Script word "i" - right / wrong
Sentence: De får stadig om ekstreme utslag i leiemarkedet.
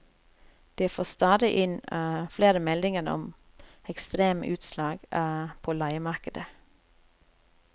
wrong